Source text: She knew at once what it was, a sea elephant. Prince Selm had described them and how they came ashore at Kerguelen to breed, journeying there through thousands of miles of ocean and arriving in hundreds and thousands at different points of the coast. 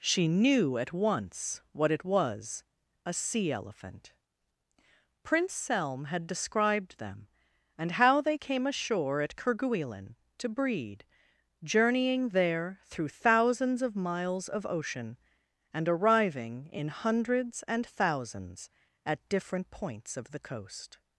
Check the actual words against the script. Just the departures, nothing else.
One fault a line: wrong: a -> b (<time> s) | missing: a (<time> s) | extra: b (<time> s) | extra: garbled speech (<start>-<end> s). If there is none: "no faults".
no faults